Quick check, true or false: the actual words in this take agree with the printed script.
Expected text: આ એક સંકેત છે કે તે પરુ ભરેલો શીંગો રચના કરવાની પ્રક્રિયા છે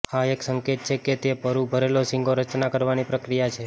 true